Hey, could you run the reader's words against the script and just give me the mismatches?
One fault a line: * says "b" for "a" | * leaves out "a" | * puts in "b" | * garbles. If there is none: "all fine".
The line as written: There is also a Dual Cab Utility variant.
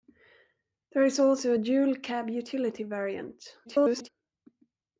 * garbles